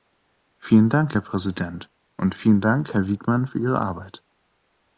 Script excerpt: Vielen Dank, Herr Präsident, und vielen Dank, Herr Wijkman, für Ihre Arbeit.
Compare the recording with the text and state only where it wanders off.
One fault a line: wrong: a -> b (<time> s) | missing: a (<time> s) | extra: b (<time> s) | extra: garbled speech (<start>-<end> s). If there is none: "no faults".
no faults